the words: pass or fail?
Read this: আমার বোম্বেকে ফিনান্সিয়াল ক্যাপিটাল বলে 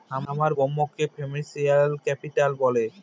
pass